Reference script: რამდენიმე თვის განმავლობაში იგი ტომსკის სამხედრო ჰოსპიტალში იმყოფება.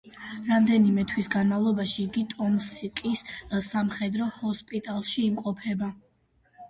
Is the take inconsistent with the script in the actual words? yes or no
no